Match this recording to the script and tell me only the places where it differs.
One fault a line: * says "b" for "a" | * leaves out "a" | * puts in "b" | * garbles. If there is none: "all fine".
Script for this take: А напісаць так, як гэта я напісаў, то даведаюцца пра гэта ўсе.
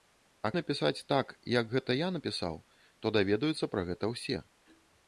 all fine